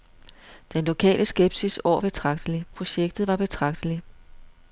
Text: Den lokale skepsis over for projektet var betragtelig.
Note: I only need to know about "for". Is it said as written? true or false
false